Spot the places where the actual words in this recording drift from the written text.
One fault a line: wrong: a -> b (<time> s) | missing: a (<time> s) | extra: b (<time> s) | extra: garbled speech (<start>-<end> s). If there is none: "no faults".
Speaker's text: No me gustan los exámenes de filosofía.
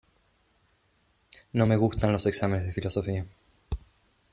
no faults